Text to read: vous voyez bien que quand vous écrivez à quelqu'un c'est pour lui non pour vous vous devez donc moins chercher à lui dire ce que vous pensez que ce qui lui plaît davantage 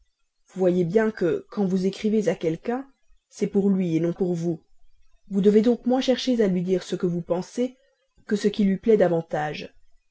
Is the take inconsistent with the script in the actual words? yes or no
no